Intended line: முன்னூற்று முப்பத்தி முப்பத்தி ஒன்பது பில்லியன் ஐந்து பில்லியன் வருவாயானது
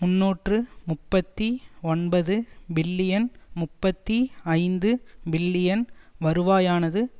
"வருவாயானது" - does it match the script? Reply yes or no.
yes